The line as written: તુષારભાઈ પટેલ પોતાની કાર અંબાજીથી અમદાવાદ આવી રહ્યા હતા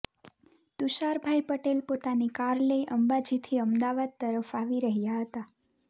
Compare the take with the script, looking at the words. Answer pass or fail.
fail